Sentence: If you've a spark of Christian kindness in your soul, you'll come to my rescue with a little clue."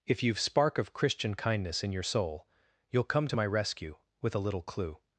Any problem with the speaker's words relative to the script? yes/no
yes